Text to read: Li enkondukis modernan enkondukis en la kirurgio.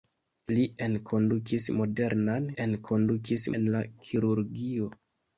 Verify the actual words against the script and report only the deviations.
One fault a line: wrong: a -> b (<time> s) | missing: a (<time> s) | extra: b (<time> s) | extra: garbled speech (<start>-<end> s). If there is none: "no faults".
no faults